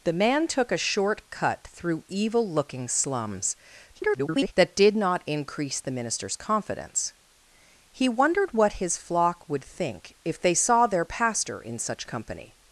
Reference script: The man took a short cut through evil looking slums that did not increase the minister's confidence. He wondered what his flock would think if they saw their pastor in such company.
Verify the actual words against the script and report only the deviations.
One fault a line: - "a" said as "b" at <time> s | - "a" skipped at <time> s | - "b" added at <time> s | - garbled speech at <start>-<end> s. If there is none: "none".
- garbled speech at 3.9-4.5 s